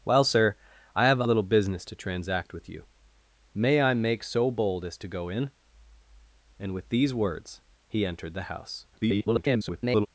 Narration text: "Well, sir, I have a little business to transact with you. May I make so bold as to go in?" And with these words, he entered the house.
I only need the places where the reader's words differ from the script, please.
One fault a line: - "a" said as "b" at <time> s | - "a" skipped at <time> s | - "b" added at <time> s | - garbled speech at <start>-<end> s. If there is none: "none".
- garbled speech at 8.9-10.1 s